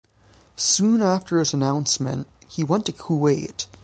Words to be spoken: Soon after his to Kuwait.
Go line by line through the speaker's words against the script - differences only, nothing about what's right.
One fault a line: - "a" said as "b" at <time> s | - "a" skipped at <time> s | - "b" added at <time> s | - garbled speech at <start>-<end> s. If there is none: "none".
- "announcement he went" added at 1.5 s